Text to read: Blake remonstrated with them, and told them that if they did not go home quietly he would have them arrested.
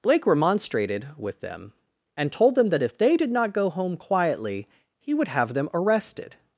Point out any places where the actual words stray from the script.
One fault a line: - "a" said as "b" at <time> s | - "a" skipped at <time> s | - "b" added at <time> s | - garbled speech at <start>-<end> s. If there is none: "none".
none